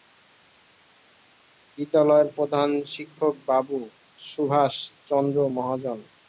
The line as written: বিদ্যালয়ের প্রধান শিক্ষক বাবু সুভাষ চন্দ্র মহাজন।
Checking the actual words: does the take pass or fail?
pass